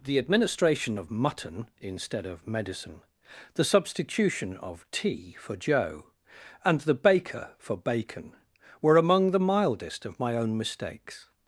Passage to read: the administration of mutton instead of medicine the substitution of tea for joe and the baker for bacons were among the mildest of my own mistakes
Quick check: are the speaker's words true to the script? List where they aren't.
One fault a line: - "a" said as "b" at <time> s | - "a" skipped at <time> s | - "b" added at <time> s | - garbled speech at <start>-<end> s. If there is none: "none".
- "bacons" said as "bacon" at 7.7 s